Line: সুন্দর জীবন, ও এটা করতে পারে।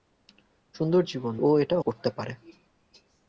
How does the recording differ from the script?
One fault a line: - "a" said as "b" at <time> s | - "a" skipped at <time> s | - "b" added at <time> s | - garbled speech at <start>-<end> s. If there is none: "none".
none